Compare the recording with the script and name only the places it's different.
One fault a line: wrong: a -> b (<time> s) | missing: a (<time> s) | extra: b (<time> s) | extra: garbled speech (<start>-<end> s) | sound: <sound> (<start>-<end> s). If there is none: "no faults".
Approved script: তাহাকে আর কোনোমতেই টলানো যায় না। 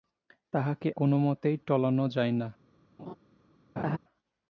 missing: আর (0.9 s)
sound: laugh (3.0-3.2 s)
sound: laugh (3.8-4.0 s)